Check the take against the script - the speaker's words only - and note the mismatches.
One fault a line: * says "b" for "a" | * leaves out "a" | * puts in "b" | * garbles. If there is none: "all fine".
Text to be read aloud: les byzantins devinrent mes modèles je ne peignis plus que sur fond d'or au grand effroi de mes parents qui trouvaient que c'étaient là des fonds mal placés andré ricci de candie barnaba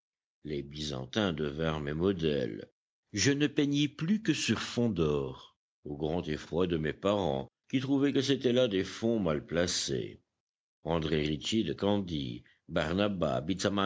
all fine